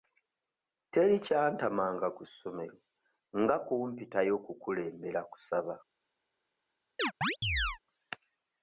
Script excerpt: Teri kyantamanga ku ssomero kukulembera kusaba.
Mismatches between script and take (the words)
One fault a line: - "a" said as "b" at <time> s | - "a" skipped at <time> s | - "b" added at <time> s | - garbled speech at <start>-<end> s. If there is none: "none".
- "nga kumpitayo" added at 3.4 s